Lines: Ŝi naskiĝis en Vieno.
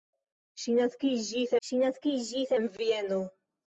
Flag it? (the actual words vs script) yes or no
yes